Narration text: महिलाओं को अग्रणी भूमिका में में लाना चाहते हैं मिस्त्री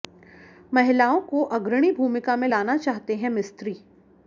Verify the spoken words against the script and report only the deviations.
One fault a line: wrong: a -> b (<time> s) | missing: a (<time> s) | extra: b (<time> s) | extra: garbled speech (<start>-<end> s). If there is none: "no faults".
missing: में (2.5 s)